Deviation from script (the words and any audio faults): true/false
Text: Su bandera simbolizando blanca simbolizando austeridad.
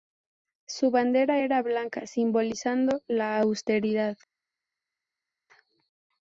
true